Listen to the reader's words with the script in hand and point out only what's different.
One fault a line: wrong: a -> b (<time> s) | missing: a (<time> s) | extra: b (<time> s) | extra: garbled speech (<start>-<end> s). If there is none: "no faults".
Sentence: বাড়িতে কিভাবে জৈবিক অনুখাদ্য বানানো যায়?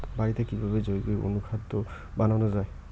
no faults